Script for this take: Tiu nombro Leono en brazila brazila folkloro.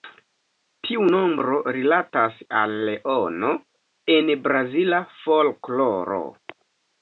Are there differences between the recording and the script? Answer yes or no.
yes